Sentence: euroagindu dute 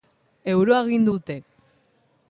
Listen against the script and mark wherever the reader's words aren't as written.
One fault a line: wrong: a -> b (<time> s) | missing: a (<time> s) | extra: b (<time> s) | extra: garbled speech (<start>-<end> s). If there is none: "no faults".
no faults